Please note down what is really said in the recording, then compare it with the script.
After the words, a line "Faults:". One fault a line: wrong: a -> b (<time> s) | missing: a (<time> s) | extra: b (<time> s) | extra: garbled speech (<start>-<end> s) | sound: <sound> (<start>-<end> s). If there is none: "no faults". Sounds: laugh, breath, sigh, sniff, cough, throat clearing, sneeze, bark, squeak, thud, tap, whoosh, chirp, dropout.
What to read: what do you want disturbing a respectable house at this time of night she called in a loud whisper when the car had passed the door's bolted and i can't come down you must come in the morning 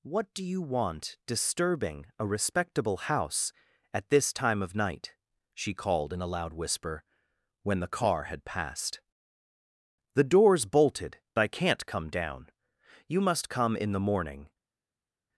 what do you want disturbing a respectable house at this time of night she called in a loud whisper when the car had passed the door's bolted i can't come down you must come in the morning
Faults:
missing: and (11.2 s)